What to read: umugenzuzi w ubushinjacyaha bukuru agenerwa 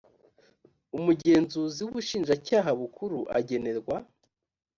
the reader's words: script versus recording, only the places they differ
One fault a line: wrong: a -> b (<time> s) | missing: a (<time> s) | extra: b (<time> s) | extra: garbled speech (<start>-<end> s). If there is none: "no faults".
no faults